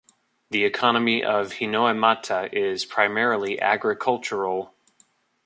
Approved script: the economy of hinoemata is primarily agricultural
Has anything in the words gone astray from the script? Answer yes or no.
no